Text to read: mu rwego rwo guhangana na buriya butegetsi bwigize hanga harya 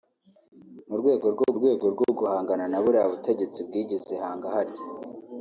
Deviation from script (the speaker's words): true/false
true